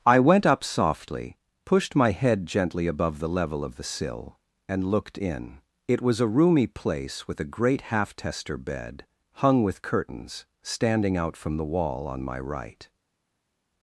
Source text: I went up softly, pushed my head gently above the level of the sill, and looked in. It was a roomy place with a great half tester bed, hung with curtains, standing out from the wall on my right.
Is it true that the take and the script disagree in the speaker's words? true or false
false